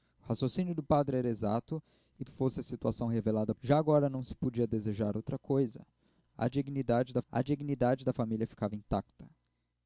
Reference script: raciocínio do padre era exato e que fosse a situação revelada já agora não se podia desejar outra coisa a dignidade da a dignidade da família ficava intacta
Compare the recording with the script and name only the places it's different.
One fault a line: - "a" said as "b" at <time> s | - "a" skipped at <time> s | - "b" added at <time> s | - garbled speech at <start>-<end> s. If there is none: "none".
none